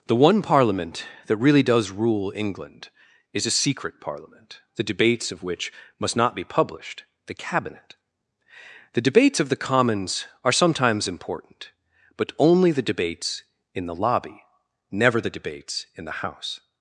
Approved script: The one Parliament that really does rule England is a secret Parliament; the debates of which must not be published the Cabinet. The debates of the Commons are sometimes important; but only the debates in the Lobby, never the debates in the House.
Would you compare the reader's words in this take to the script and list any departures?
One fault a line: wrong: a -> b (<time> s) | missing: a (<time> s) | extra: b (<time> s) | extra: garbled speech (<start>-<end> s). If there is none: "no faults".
no faults